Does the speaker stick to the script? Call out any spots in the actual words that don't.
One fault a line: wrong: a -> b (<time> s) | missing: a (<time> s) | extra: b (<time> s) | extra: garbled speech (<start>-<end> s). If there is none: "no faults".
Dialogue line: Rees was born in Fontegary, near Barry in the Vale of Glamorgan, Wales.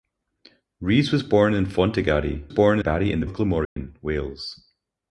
wrong: near -> born (2.5 s)
missing: Vale (3.2 s)